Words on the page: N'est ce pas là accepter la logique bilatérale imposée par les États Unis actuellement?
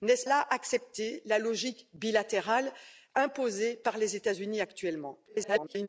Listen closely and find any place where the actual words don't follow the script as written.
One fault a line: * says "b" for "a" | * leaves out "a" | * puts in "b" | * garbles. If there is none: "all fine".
* leaves out "pas"
* garbles